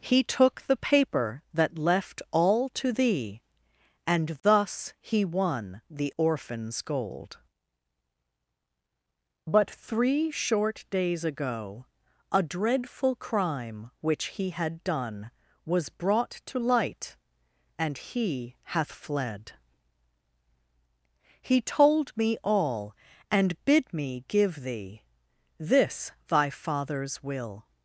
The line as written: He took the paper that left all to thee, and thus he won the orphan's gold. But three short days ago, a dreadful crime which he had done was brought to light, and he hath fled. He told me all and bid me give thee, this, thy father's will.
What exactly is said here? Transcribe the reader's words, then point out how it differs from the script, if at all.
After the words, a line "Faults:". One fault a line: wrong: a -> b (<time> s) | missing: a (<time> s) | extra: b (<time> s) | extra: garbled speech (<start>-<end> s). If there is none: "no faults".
He took the paper that left all to thee, and thus he won the orphan's gold. But three short days ago, a dreadful crime which he had done was brought to light, and he hath fled. He told me all and bid me give thee, this, thy father's will.
Faults:
no faults